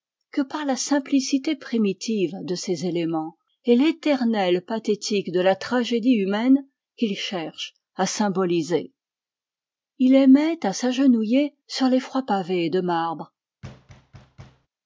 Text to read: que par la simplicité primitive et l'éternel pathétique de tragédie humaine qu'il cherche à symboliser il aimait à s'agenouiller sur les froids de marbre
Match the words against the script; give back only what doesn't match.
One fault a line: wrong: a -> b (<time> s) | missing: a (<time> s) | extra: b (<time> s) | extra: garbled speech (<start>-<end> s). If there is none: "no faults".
extra: de ses éléments (2.4 s)
extra: la (5.4 s)
extra: pavés (12.2 s)